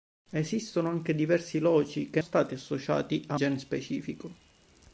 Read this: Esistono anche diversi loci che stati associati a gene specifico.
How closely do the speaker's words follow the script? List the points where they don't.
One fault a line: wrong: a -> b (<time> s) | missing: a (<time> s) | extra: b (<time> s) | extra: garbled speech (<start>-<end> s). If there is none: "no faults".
no faults